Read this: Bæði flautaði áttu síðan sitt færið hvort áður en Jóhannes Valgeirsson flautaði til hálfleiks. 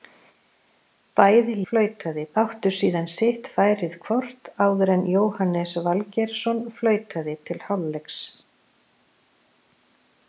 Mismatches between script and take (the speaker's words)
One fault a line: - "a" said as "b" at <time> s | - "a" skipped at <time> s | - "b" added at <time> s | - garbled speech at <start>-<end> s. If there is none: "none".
none